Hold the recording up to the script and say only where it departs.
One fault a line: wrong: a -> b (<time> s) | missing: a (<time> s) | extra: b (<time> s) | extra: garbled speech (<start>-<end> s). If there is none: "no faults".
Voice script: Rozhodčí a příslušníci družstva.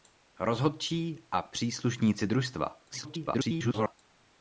extra: garbled speech (2.9-3.9 s)